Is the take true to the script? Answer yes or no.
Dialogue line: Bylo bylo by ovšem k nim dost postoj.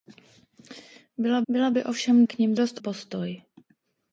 yes